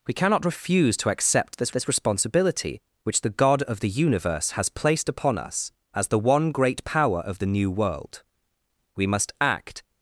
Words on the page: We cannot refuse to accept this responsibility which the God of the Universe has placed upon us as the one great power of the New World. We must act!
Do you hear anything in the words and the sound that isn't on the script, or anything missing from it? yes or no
yes